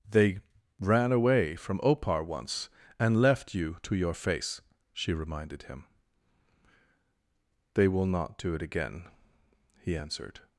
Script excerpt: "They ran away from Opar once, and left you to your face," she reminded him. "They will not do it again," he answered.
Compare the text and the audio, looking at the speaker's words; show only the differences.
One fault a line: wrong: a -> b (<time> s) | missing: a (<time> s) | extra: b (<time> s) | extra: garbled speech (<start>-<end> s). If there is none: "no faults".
no faults